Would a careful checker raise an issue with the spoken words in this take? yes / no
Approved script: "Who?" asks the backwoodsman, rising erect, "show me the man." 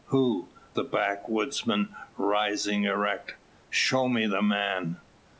yes